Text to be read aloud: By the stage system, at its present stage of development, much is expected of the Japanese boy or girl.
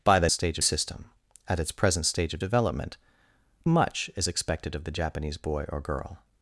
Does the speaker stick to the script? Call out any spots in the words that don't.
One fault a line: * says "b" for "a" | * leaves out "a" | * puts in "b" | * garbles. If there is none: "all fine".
all fine